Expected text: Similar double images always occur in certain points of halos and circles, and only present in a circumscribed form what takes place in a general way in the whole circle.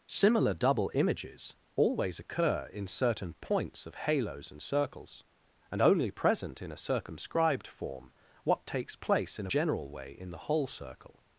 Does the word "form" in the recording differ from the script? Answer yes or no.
no